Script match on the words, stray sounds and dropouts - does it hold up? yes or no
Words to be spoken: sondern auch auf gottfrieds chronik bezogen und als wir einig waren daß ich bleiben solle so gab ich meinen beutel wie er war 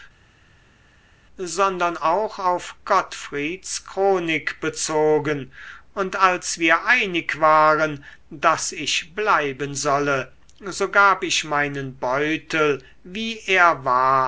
yes